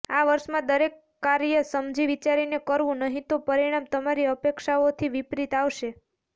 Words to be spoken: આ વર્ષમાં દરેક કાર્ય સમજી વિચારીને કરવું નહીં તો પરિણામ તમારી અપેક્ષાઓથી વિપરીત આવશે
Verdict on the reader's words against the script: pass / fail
pass